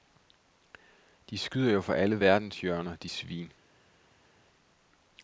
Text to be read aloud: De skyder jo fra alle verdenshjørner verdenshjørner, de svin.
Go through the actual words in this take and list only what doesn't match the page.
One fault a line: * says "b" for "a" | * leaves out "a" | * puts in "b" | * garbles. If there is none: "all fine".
* leaves out "verdenshjørner"